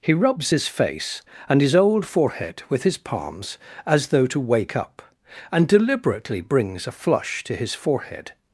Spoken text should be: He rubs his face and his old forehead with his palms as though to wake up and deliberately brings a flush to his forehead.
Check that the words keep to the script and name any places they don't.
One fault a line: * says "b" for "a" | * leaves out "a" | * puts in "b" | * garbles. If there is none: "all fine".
all fine